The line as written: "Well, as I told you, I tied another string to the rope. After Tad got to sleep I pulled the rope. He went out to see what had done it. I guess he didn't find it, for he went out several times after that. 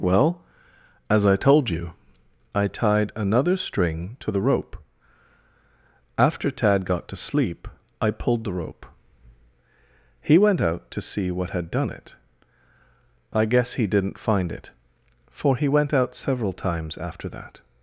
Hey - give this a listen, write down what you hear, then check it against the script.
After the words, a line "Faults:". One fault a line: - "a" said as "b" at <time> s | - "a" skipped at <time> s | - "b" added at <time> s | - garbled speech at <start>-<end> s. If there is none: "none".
"Well, as I told you, I tied another string to the rope. After Tad got to sleep I pulled the rope. He went out to see what had done it. I guess he didn't find it, for he went out several times after that.
Faults:
none